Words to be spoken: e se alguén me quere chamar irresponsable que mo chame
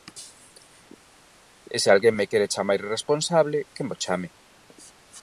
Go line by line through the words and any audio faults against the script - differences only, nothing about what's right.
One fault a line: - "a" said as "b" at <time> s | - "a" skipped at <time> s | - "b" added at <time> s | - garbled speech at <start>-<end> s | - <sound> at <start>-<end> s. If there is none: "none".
none